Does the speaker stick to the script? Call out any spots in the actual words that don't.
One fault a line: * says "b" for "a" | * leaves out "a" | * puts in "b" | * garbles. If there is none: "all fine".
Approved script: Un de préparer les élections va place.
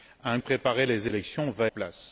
all fine